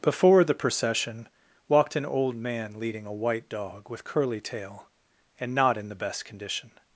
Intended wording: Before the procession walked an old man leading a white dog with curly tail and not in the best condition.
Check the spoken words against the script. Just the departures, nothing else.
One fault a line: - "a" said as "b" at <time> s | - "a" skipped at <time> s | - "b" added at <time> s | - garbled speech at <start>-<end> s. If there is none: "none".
none